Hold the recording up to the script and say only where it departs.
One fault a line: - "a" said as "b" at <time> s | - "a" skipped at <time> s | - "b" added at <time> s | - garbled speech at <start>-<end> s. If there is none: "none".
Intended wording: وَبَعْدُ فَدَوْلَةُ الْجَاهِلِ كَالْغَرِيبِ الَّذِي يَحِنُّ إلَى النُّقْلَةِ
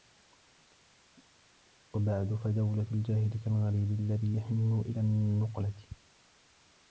none